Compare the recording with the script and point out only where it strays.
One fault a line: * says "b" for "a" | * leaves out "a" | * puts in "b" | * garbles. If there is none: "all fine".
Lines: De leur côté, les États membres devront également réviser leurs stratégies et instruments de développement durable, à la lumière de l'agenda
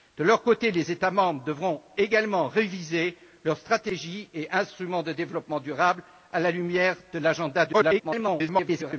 * garbles